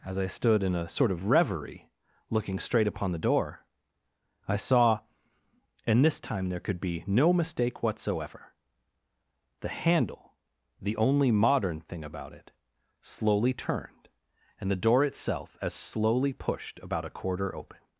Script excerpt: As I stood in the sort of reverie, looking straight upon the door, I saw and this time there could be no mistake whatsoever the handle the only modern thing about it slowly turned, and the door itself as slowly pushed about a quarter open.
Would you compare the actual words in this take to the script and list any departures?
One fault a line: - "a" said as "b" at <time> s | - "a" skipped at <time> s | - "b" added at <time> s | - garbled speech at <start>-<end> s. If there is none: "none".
- "the" said as "a" at 0.8 s